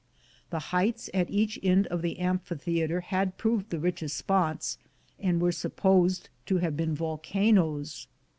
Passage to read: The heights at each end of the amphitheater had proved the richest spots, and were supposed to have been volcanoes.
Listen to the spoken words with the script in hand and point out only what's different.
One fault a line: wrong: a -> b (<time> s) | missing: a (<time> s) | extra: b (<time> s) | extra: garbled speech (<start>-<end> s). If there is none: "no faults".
no faults